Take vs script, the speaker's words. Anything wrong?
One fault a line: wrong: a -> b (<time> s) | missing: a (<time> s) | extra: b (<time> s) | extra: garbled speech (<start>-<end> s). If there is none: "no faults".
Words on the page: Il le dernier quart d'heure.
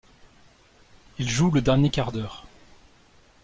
extra: joue (1.3 s)